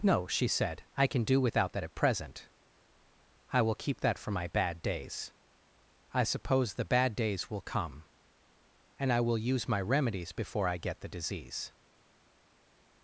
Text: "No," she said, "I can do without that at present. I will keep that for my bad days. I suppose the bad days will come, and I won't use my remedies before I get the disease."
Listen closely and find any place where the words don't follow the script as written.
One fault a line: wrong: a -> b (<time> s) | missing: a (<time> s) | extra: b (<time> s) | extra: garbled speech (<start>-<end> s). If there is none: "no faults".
wrong: won't -> will (9.2 s)